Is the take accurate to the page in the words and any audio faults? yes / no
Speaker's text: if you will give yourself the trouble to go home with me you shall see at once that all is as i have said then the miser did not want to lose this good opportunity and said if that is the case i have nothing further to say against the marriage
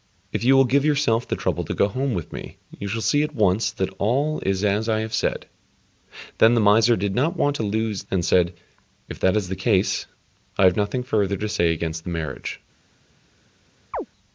no